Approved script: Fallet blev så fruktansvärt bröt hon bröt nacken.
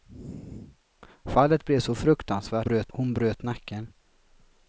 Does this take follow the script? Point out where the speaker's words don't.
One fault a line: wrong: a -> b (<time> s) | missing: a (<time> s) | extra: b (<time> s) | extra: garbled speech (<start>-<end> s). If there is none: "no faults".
no faults